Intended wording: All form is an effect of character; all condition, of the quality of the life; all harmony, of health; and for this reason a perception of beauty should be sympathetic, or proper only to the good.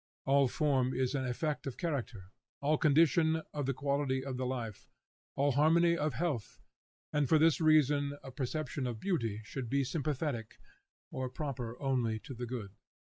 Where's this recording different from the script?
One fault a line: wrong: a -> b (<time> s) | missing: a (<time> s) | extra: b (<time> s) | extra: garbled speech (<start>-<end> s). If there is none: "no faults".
no faults